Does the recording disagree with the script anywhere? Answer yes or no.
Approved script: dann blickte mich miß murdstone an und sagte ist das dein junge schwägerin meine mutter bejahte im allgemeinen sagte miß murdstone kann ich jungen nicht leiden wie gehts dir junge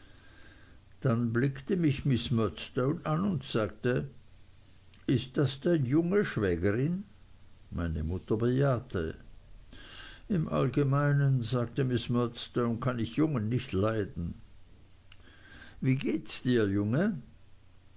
no